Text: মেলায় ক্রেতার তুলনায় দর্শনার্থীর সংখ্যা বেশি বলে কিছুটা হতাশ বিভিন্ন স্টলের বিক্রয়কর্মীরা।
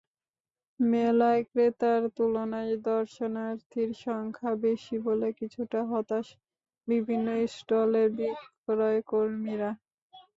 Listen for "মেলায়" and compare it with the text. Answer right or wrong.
right